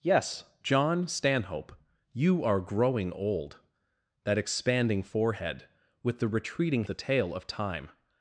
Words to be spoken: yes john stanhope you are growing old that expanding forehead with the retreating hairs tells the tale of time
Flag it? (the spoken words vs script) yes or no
yes